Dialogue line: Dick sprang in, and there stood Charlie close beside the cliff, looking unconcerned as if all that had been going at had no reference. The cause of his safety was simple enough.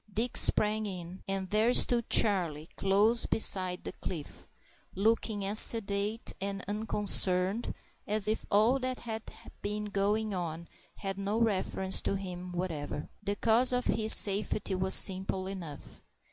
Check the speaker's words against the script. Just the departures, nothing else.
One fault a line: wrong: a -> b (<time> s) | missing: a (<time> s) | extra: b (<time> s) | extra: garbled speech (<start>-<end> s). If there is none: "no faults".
extra: as sedate and (5.5 s)
wrong: at -> on (10.3 s)
extra: to him whatever (12.0 s)